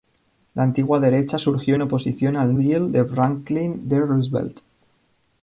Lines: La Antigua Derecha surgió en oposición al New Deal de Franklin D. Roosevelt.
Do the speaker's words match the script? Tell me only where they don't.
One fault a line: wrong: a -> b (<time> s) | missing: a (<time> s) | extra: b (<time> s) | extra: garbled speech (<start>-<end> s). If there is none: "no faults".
missing: New (2.5 s)